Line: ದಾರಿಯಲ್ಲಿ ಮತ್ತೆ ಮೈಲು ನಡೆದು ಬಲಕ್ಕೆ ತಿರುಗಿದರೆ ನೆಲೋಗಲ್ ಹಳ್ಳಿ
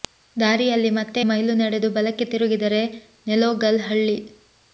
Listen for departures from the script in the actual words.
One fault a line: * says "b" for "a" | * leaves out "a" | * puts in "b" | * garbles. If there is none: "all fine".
all fine